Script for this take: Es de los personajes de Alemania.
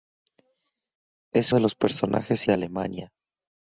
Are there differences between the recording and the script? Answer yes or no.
no